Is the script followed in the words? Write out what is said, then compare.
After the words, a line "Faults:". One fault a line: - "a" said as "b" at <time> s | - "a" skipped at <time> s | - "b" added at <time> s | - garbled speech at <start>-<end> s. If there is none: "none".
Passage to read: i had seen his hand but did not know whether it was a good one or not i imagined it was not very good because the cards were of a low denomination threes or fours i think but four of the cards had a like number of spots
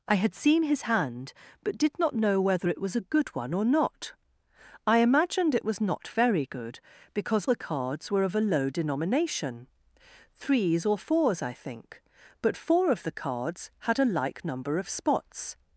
i had seen his hand but did not know whether it was a good one or not i imagined it was not very good because the cards were of a low denomination threes or fours i think but four of the cards had a like number of spots
Faults:
none